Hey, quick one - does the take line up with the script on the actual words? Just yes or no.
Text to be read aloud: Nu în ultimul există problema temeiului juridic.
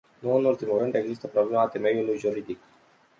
no